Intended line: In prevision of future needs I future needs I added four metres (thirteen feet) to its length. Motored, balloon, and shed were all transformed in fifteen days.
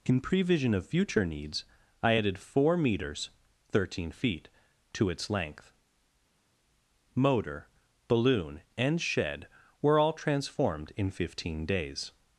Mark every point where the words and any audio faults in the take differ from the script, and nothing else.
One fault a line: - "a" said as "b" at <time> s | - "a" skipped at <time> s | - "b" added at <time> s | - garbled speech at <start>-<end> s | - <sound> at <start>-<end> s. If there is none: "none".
- "future needs I" skipped at 2.1 s
- "Motored" said as "Motor" at 7.1 s